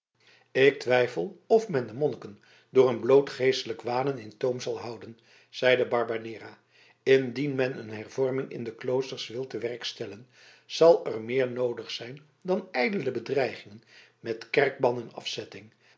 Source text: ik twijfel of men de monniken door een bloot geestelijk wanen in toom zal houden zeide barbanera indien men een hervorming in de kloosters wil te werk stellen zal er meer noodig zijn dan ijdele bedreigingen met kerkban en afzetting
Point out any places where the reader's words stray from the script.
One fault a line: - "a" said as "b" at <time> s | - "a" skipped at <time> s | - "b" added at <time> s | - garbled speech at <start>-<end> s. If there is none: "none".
none